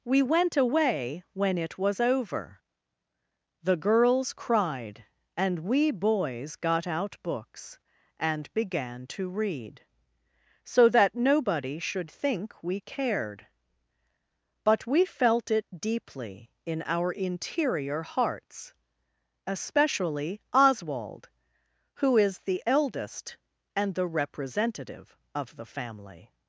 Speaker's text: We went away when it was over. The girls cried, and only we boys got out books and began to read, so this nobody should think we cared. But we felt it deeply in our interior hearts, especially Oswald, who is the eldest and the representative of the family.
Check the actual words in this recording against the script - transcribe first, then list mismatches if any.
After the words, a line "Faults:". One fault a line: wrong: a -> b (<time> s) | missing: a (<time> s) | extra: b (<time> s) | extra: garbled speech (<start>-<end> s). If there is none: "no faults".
We went away when it was over. The girls cried, and we boys got out books and began to read, so that nobody should think we cared. But we felt it deeply in our interior hearts, especially Oswald, who is the eldest and the representative of the family.
Faults:
missing: only (5.6 s)
wrong: this -> that (10.9 s)